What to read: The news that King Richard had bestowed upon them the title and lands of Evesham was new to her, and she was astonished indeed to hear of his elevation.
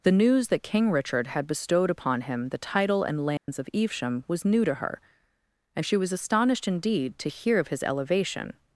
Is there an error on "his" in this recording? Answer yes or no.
no